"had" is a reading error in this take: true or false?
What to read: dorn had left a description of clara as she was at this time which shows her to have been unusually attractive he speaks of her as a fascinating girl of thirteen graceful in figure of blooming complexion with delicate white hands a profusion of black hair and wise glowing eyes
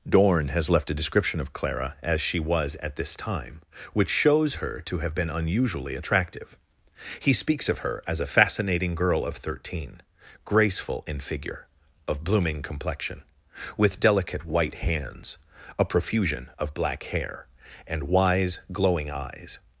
true